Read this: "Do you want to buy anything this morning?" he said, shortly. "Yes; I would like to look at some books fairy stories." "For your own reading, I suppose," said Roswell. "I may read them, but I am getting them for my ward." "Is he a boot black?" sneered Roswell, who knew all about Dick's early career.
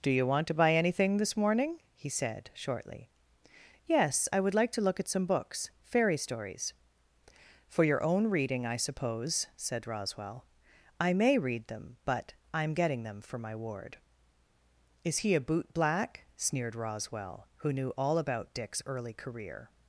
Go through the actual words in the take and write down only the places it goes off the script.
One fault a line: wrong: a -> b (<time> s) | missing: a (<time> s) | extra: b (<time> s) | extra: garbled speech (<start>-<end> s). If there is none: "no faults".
no faults